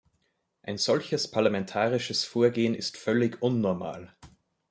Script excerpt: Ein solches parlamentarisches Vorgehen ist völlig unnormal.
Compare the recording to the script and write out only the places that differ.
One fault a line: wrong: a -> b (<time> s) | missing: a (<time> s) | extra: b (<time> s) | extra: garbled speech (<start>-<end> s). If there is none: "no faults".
no faults